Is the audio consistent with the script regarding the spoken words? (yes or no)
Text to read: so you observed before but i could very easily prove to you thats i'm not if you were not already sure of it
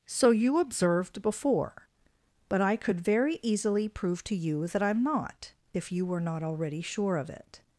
no